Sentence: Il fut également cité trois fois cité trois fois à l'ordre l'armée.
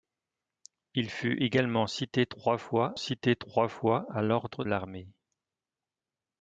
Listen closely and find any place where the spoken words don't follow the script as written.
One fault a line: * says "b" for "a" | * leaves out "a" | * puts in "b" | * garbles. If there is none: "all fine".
all fine